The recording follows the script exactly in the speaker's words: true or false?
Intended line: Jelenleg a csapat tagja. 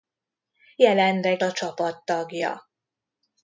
true